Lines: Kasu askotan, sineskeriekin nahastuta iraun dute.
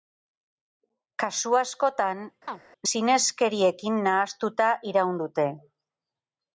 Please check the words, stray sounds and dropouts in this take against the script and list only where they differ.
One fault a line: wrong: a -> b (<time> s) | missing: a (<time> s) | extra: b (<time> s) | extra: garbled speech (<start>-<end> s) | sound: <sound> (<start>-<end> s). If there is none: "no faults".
sound: chirp (2.5-2.6 s)